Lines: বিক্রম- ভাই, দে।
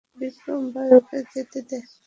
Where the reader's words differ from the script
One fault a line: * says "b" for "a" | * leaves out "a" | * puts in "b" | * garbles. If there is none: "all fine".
* puts in "ওকে যেতে"